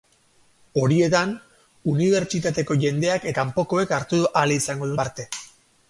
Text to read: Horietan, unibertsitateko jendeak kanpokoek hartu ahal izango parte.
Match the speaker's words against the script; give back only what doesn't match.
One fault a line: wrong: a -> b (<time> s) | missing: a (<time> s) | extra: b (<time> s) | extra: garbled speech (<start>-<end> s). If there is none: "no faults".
no faults